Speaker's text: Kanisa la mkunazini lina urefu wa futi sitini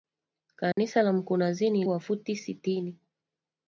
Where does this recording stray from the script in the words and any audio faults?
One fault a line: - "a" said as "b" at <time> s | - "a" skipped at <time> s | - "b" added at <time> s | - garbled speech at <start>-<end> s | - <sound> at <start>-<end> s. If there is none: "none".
- dropout at 0.7-0.8 s
- "lina urefu" skipped at 1.9 s